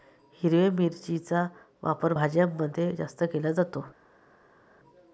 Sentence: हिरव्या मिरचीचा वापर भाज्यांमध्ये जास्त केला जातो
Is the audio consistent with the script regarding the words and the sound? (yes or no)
yes